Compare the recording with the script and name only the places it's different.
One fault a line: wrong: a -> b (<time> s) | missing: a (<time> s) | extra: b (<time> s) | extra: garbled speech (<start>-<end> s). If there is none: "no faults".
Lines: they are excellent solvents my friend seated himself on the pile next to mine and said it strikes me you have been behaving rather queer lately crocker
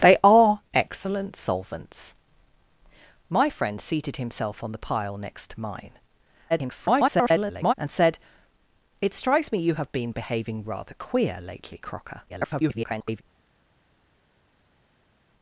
extra: garbled speech (6.5-7.7 s)
extra: garbled speech (12.3-13.2 s)